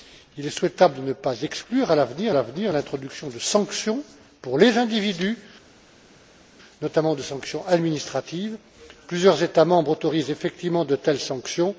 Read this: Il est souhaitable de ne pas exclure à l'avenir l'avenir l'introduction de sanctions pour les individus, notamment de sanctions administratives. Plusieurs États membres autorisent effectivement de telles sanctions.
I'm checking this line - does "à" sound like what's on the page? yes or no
yes